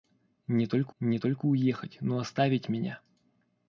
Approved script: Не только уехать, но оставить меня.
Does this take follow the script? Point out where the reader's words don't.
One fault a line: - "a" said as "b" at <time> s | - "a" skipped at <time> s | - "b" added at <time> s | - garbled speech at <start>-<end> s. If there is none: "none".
- "не только" added at 1.0 s